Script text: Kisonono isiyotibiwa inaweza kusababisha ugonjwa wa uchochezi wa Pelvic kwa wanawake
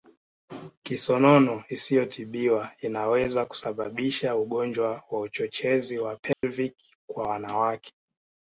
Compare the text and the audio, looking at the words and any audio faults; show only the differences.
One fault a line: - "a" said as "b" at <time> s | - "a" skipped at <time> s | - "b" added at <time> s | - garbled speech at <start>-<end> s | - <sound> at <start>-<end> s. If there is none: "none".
- dropout at 6.3-6.4 s